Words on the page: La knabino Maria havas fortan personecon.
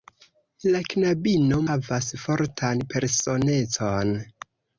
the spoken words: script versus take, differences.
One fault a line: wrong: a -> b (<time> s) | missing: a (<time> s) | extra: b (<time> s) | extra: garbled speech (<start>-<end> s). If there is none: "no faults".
missing: Maria (1.6 s)